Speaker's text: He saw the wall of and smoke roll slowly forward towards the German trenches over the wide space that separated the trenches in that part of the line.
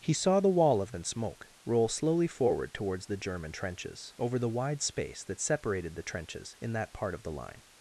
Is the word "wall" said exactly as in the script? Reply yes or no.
yes